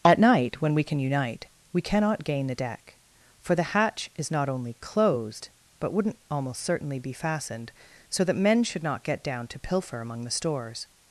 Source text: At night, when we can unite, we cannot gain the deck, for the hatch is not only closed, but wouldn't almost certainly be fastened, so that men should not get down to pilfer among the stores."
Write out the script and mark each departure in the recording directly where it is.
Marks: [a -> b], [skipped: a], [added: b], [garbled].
At night, when we can unite, we cannot gain the deck, for the hatch is not only closed, but wouldn't almost certainly be fastened, so that men should not get down to pilfer among the stores."